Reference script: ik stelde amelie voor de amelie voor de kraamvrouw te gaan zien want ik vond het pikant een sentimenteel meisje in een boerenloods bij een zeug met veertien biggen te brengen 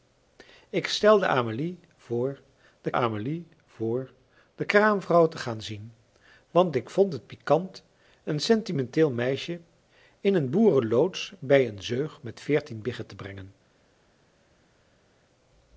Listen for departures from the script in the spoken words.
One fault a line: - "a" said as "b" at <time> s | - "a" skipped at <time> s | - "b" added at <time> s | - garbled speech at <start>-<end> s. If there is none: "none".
none